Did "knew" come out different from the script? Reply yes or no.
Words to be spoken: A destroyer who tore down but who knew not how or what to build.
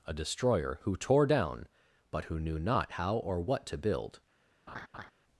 no